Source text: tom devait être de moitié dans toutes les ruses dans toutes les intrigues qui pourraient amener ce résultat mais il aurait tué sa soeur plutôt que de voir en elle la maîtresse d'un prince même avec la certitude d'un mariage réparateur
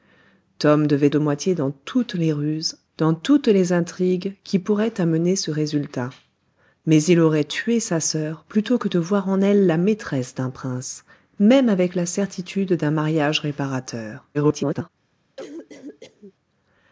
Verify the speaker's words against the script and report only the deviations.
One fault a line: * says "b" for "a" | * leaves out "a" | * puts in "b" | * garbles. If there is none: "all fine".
* leaves out "être"
* garbles